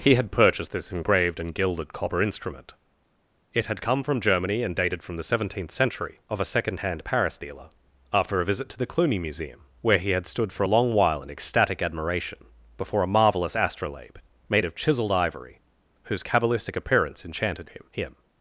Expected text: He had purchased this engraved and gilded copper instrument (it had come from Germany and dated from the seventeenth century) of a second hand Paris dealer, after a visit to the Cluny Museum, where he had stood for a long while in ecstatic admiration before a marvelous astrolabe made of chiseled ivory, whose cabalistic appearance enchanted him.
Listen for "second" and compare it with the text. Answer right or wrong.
right